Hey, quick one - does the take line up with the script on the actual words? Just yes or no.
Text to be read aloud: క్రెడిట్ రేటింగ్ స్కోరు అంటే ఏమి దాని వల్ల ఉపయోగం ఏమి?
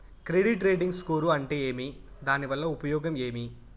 yes